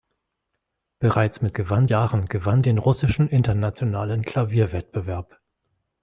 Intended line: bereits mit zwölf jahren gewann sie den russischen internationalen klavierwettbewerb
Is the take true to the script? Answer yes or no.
no